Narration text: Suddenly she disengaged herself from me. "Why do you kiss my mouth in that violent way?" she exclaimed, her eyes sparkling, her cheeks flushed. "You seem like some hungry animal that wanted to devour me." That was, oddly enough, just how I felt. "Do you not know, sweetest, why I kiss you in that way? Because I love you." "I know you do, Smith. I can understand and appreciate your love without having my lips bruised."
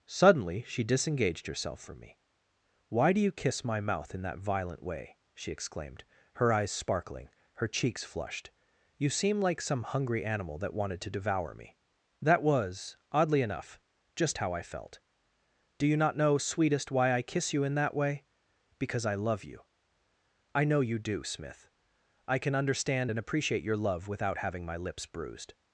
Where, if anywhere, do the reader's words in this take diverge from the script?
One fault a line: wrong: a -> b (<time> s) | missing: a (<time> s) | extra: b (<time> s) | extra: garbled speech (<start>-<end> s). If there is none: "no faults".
no faults